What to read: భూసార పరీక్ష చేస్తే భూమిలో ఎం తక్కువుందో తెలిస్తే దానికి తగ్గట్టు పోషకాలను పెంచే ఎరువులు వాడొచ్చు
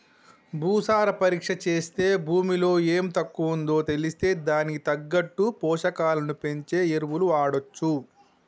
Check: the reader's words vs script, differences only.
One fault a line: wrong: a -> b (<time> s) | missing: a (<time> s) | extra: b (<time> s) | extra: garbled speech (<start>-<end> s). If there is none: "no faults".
no faults